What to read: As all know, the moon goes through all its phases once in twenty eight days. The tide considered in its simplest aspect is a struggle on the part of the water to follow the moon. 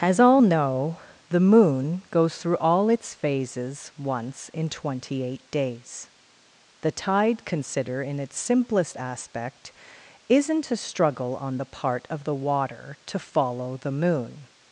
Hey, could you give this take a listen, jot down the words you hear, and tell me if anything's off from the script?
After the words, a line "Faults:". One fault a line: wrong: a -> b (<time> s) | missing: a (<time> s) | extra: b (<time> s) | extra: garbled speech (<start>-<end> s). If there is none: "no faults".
As all know, the moon goes through all its phases once in twenty eight days. The tide consider in its simplest aspect isn't a struggle on the part of the water to follow the moon.
Faults:
wrong: considered -> consider (7.4 s)
wrong: is -> isn't (10.3 s)